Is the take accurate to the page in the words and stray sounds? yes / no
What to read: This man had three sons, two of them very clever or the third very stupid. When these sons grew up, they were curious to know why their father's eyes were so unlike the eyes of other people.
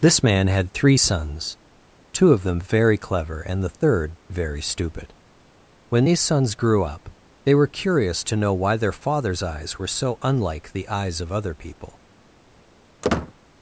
no